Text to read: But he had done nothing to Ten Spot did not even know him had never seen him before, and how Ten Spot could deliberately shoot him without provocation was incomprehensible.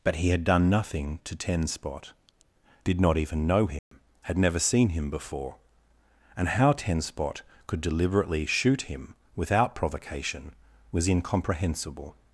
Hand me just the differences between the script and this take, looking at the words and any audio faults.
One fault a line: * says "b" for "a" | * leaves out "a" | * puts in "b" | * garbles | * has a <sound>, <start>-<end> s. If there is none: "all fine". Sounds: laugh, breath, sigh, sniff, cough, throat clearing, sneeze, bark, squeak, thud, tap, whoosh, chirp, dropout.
* has a dropout, 3.8-3.9 s